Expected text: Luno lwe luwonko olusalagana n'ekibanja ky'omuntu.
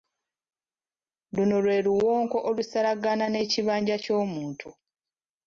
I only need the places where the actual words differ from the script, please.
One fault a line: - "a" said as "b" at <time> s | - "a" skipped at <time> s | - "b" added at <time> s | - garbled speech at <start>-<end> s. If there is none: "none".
none